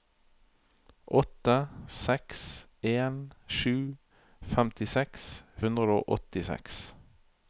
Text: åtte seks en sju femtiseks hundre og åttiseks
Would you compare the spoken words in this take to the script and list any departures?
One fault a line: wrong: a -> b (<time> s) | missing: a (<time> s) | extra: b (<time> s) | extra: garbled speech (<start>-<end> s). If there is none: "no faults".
no faults